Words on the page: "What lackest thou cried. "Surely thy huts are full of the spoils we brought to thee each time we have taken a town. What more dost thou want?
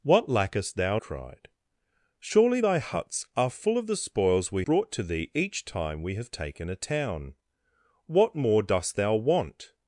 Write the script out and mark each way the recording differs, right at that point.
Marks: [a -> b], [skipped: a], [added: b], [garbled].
"What lackest thou cried. "Surely thy huts are full of the spoils we brought to thee each time we have taken a town. What more dost thou want?